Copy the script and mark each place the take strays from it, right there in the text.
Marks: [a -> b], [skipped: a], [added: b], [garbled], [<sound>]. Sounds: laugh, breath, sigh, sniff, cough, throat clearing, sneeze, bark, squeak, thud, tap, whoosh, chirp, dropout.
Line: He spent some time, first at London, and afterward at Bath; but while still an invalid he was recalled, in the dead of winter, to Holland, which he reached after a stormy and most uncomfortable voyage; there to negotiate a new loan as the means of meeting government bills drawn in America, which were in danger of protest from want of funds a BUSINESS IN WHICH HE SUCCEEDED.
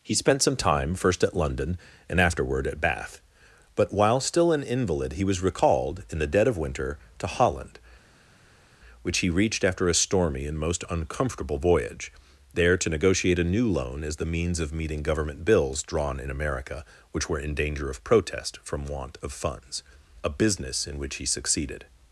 He spent some time, first at London, and afterward at Bath; but while still an invalid he was recalled, in the dead of winter, to Holland, which he reached after a stormy and most uncomfortable voyage; there to negotiate a new loan as the means of meeting government bills drawn in America, which were in danger of protest from want of funds a BUSINESS IN WHICH HE SUCCEEDED.